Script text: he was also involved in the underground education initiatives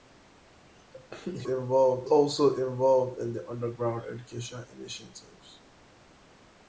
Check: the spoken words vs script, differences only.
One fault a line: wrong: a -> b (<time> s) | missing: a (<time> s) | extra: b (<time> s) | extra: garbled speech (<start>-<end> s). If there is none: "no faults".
wrong: was -> involved (1.4 s)